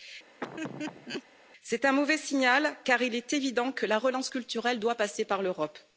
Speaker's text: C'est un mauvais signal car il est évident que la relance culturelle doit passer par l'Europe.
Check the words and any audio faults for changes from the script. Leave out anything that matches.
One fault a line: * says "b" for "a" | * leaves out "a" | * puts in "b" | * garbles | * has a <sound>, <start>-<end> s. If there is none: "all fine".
* has a laugh, 0.4-1.2 s